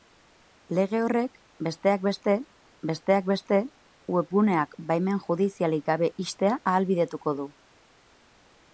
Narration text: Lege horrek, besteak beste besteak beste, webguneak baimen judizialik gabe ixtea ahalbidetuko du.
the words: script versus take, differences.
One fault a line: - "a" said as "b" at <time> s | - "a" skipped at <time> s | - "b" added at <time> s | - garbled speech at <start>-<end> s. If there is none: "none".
none